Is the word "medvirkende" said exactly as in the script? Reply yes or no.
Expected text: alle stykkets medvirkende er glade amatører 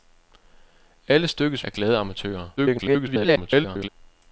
no